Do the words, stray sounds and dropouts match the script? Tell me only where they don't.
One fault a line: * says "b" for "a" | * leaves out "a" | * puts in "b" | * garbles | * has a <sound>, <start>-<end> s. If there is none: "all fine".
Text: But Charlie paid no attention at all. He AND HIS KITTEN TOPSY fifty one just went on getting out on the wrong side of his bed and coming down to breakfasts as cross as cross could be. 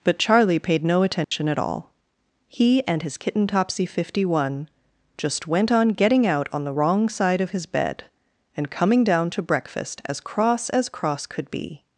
* has a dropout, 1.2-1.3 s
* says "breakfast" for "breakfasts"